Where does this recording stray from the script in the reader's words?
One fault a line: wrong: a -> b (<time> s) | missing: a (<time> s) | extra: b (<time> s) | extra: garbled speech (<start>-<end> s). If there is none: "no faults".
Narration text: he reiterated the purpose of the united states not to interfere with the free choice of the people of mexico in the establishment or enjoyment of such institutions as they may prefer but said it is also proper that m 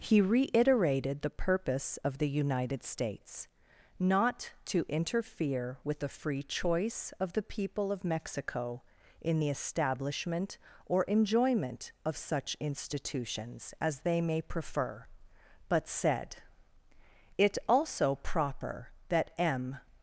missing: is (17.6 s)